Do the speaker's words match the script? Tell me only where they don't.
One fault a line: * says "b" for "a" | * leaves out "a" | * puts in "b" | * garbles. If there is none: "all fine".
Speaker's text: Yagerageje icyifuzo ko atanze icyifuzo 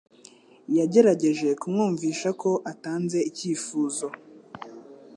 * says "kumwumvisha" for "icyifuzo"